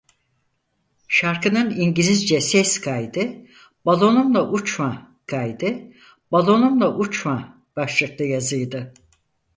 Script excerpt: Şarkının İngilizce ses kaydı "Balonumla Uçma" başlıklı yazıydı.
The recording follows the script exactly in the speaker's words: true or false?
false